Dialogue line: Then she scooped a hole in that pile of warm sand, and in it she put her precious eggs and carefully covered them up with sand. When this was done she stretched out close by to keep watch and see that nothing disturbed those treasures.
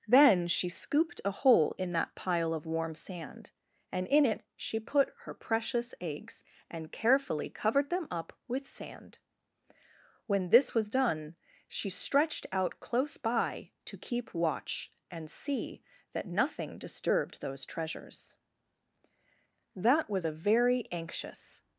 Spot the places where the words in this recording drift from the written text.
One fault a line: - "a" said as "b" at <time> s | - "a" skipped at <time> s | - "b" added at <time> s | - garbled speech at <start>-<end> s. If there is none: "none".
- "That was a very anxious" added at 19.7 s